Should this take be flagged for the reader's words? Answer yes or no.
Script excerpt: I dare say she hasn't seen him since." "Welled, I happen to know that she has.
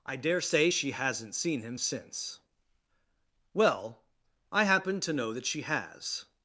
yes